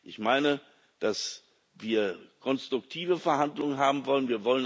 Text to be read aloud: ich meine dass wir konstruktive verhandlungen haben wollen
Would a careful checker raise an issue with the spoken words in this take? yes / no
no